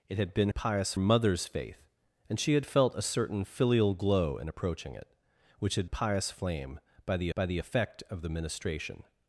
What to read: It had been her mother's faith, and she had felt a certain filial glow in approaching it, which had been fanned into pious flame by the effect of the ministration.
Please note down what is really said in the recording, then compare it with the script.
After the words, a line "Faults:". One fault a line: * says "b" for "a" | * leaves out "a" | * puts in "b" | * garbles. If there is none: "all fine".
It had been pious mother's faith, and she had felt a certain filial glow in approaching it, which had pious flame by the by the effect of the ministration.
Faults:
* says "pious" for "her"
* says "pious flame by the" for "been fanned into pious flame"